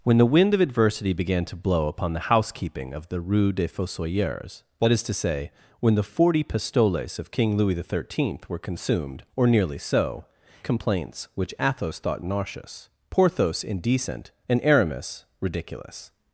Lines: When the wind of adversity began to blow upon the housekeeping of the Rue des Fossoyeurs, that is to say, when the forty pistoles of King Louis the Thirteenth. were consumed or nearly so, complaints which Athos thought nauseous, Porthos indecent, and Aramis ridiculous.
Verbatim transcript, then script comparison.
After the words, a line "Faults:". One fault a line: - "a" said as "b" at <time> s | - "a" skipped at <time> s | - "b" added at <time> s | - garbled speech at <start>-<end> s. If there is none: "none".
When the wind of adversity began to blow upon the housekeeping of the Rue des Fossoyeurs, that is to say, when the forty pistoles of King Louis the Thirteenth. were consumed or nearly so, complaints which Athos thought nauseous, Porthos indecent, and Aramis ridiculous.
Faults:
none